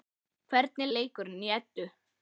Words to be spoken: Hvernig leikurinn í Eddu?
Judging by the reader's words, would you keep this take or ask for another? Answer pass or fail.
pass